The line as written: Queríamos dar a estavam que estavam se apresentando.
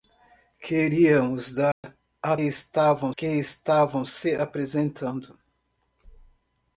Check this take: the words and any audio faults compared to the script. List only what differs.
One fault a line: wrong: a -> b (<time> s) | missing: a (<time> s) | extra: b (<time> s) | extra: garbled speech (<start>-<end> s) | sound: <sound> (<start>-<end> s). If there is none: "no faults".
sound: dropout (1.7-1.8 s)